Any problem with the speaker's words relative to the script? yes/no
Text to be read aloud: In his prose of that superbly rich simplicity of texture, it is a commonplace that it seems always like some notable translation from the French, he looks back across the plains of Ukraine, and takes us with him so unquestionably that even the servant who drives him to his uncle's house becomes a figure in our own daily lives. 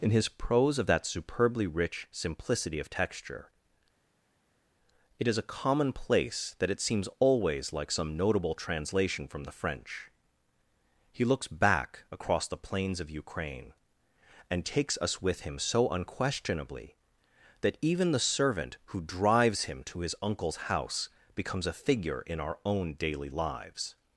no